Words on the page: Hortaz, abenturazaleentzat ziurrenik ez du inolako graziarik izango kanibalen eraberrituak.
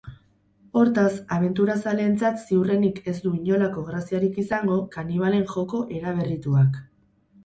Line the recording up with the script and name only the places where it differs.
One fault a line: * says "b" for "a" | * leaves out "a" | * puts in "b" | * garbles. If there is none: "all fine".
* puts in "joko"